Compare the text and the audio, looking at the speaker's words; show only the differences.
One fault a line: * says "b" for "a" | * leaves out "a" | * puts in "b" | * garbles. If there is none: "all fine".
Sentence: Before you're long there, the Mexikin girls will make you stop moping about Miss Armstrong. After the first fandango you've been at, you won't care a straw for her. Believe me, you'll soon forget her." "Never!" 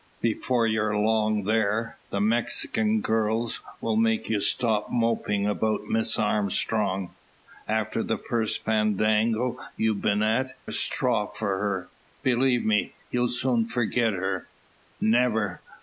* leaves out "you won't care"